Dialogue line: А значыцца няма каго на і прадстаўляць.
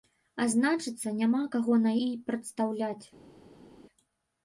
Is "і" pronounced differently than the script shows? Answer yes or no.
no